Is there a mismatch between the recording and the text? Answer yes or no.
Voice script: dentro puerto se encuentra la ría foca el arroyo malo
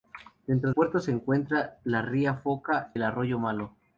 no